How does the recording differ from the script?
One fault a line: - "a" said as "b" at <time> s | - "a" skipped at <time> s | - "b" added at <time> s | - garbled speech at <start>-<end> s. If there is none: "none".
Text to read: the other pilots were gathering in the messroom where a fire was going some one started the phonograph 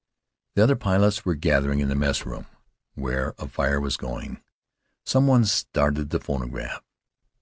none